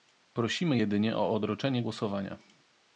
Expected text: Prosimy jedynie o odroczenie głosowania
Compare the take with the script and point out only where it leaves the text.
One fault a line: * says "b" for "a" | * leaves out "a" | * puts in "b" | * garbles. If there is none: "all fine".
all fine